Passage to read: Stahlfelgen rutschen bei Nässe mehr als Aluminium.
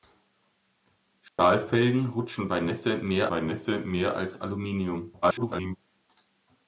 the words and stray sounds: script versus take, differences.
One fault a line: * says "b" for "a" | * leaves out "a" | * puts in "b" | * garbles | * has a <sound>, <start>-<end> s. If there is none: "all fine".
* has a dropout, 1.3-1.4 s
* puts in "bei Nässe mehr"
* garbles